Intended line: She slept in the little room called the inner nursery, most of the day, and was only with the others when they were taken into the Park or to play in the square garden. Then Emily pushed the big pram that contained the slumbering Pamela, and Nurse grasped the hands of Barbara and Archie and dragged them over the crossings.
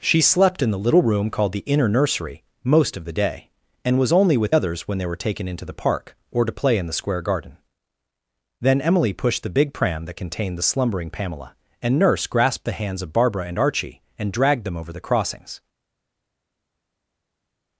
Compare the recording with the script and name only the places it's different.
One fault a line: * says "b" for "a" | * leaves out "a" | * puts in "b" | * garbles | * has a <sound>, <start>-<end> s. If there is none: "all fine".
* leaves out "the"